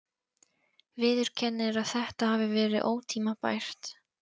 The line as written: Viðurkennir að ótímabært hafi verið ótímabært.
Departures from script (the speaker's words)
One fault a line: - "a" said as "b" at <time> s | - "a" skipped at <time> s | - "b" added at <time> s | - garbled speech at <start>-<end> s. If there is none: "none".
- "ótímabært" said as "þetta" at 1.9 s